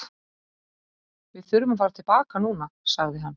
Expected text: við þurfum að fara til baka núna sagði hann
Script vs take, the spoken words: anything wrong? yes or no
no